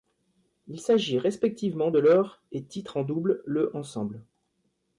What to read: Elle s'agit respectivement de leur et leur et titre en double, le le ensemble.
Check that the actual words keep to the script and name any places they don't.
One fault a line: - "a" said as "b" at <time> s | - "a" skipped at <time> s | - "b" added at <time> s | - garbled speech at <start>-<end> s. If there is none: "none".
- "Elle" said as "Il" at 0.7 s
- "leur et" skipped at 2.6 s
- "le" skipped at 3.8 s